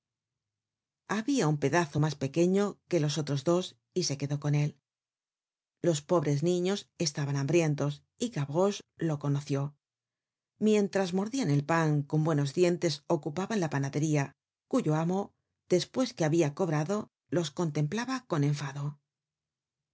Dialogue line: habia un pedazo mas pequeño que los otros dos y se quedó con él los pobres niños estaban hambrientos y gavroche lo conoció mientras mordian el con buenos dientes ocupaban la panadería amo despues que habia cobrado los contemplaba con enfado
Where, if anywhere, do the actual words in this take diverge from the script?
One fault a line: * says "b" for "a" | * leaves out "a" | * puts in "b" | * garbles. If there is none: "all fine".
* puts in "pan"
* puts in "cuyo"